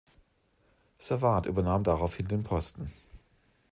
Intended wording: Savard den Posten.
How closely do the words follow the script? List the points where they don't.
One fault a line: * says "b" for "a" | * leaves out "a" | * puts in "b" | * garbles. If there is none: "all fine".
* puts in "übernahm daraufhin"